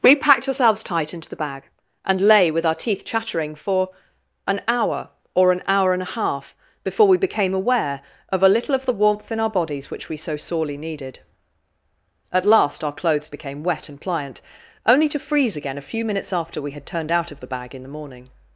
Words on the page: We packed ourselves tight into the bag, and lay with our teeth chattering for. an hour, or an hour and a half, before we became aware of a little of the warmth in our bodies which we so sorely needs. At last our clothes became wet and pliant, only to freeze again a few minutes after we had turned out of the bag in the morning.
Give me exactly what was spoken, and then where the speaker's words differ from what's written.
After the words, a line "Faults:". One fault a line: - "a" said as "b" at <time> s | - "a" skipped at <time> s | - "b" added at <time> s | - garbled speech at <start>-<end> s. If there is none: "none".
We packed ourselves tight into the bag, and lay with our teeth chattering for. an hour, or an hour and a half, before we became aware of a little of the warmth in our bodies which we so sorely needed. At last our clothes became wet and pliant, only to freeze again a few minutes after we had turned out of the bag in the morning.
Faults:
- "needs" said as "needed" at 10.8 s